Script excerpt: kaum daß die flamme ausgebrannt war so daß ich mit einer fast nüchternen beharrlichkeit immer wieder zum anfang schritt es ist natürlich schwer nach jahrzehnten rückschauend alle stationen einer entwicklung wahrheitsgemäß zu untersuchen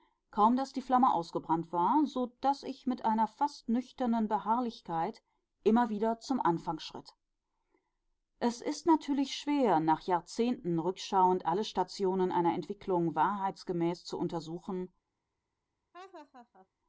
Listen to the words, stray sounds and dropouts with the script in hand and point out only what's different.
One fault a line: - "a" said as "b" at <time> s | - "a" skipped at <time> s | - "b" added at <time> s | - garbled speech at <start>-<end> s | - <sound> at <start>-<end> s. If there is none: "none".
- laugh at 15.9-16.7 s